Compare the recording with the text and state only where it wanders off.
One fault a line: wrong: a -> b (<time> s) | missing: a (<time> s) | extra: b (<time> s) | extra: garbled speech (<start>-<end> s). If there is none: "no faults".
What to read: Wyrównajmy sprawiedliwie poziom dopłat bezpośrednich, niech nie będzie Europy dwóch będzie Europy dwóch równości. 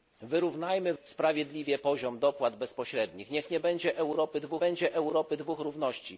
no faults